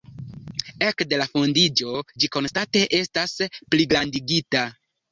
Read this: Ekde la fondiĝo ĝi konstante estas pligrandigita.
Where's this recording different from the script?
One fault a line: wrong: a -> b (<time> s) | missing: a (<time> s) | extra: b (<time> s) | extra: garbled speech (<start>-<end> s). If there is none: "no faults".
no faults